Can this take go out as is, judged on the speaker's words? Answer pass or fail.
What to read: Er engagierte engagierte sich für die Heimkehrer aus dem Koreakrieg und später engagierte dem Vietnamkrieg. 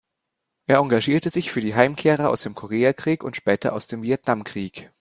fail